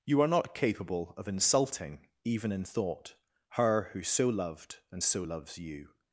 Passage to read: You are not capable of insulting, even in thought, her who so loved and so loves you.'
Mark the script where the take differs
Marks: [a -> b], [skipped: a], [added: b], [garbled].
You are not capable of insulting, even in thought, her who so loved and so loves you.'